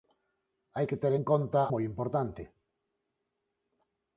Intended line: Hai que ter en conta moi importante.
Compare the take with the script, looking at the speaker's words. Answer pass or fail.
pass